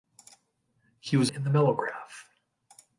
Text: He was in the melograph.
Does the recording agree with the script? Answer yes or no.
yes